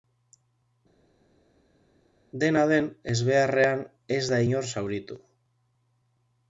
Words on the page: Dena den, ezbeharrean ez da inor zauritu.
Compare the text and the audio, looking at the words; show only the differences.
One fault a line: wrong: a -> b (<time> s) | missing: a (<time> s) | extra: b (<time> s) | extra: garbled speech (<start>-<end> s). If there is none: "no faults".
no faults